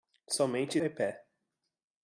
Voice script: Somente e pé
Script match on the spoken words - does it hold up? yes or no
yes